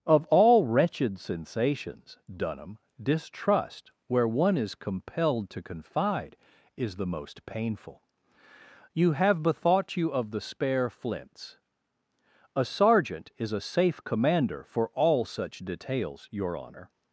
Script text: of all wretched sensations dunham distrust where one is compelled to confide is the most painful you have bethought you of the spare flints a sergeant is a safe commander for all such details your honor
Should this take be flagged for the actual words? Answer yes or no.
no